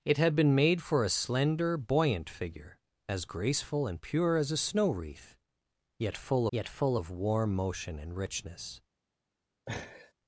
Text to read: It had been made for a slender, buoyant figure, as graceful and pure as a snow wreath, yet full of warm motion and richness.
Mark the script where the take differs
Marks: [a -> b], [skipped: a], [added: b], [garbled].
It had been made for a slender, buoyant figure, as graceful and pure as a snow wreath, yet full [added: yet full] of warm motion and richness.